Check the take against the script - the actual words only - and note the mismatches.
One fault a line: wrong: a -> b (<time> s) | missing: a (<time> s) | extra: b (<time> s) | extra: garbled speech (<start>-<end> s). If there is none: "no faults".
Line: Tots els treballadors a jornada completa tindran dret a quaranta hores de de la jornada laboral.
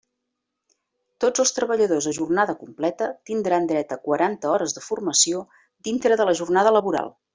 extra: formació dintre (4.9 s)